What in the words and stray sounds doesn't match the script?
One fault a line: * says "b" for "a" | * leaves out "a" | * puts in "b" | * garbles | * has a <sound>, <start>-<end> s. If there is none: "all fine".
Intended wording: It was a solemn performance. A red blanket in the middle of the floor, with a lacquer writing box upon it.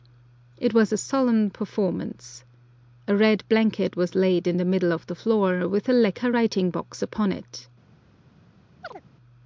* puts in "was laid"
* has a chirp, 8.8-9.0 s